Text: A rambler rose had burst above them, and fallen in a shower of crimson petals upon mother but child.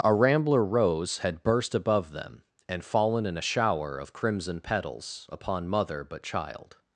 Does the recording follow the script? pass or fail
pass